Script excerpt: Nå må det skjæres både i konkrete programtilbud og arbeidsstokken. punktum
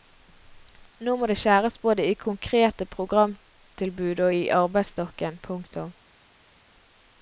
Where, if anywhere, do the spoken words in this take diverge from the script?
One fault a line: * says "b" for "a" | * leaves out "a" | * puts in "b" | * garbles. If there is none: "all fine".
* puts in "i"